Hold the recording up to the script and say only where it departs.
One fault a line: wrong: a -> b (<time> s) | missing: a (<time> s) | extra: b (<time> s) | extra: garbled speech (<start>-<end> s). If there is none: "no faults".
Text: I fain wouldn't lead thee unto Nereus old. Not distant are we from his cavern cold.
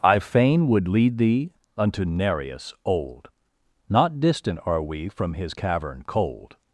wrong: wouldn't -> would (0.7 s)